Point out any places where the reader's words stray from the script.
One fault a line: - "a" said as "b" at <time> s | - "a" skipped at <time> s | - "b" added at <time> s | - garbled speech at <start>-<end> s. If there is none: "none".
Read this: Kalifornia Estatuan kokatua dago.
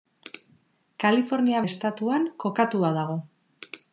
none